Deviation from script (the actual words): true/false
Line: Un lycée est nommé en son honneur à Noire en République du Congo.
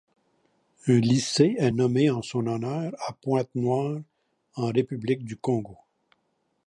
true